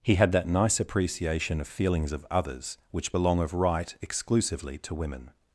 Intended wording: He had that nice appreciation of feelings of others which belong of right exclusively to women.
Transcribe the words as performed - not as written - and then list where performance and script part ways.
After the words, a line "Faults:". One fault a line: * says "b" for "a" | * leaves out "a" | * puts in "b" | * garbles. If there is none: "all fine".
He had that nice appreciation of feelings of others which belong of right exclusively to women.
Faults:
all fine